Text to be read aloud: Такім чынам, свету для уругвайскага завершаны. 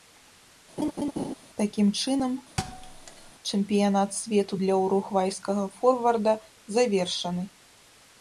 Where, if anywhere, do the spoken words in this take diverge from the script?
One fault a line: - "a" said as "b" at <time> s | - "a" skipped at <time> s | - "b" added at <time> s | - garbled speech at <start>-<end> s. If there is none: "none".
- "чэмпіянат" added at 3.5 s
- "форварда" added at 5.8 s